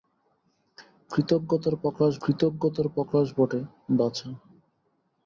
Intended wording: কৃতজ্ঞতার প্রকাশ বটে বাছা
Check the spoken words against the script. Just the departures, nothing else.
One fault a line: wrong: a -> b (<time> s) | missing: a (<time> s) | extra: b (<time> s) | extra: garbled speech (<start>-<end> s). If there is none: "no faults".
extra: কৃতজ্ঞতার প্রকাশ (2.2 s)